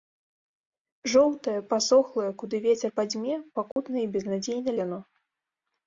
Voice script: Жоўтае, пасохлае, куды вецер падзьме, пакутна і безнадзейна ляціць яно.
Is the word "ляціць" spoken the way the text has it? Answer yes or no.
no